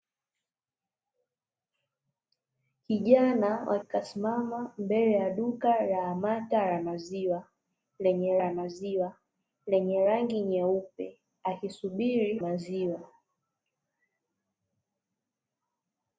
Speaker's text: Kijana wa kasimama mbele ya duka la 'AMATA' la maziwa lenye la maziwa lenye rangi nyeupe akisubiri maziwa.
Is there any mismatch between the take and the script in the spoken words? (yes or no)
no